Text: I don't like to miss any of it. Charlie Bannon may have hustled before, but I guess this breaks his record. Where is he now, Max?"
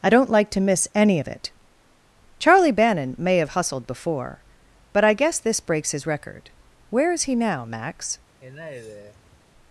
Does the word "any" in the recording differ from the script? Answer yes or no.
no